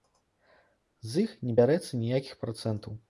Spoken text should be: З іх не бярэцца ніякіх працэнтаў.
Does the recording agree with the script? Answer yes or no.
yes